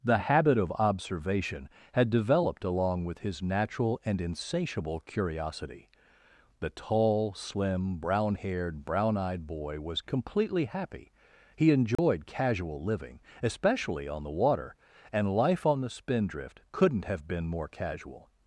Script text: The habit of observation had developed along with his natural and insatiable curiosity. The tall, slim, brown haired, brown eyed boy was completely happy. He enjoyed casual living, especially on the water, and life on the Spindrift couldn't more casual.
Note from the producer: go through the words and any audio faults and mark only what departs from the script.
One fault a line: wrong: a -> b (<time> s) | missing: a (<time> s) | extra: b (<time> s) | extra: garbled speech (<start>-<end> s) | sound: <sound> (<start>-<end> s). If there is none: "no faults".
sound: dropout (12.0-12.0 s)
extra: have been (17.1 s)